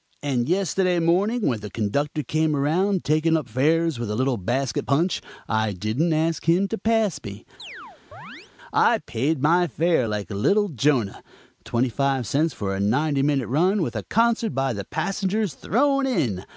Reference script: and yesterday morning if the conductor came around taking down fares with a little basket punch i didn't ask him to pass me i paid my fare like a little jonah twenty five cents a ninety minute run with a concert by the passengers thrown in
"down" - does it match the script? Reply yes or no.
no